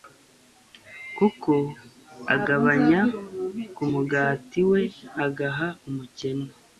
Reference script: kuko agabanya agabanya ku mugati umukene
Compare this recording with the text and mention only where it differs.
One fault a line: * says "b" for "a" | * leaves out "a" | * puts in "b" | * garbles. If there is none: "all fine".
* leaves out "agabanya"
* puts in "we agaha"